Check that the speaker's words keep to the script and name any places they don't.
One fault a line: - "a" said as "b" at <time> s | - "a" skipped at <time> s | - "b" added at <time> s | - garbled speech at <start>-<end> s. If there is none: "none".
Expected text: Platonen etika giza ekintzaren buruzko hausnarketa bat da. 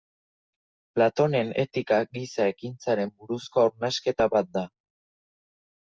none